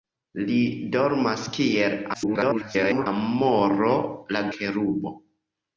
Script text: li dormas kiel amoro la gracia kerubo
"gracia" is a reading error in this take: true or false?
true